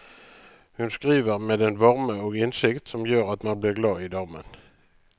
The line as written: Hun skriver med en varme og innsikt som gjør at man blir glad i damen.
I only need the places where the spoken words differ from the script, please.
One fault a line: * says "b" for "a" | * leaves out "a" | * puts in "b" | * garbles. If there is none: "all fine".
all fine